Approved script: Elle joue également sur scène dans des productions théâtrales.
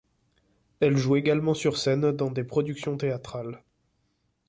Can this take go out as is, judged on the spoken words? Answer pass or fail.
pass